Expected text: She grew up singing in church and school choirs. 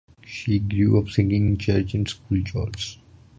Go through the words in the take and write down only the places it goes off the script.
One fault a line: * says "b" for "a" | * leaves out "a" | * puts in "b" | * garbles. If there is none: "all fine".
all fine